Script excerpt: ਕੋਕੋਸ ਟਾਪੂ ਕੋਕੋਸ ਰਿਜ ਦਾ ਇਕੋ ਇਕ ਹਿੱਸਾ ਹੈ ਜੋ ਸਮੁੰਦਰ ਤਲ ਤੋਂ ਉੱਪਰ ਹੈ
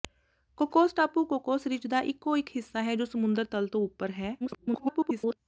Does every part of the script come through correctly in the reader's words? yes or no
no